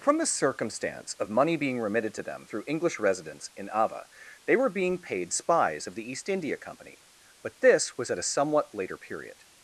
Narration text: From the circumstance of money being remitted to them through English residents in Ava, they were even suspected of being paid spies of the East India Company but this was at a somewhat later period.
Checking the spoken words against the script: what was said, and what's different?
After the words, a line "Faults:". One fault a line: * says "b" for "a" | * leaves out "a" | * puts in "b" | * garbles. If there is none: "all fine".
From the circumstance of money being remitted to them through English residents in Ava, they were being paid spies of the East India Company but this was at a somewhat later period.
Faults:
* leaves out "even suspected of"